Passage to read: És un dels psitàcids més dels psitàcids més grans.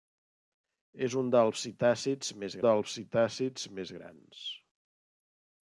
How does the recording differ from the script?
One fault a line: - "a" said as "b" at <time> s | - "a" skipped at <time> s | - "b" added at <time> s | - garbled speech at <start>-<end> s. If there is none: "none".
none